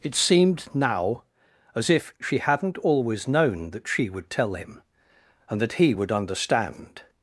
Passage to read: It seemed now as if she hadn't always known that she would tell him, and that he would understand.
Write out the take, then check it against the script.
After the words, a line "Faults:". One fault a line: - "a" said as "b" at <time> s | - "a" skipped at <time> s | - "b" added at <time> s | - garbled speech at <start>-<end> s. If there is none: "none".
It seemed now as if she hadn't always known that she would tell him, and that he would understand.
Faults:
none